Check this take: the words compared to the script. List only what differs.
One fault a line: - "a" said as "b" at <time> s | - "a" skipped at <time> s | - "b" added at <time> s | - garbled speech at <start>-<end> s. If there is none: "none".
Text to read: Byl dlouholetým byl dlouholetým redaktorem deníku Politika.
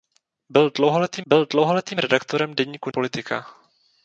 none